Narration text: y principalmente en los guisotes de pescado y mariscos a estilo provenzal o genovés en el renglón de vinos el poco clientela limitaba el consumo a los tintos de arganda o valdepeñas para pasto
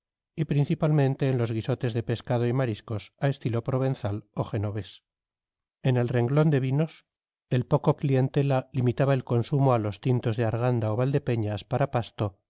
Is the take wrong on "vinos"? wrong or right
right